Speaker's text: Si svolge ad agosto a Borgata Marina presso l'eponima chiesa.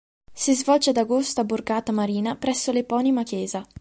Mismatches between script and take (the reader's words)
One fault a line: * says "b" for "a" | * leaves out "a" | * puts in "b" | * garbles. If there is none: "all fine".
all fine